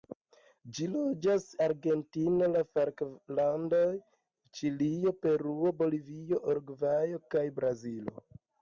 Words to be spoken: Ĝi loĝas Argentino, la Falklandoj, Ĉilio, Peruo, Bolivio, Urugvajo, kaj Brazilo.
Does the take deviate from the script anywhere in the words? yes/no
no